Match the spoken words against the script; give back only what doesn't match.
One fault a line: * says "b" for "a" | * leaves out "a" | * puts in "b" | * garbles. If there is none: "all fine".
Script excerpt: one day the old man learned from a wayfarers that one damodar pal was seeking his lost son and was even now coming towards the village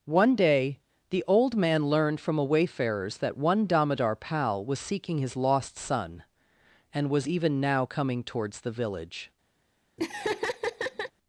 all fine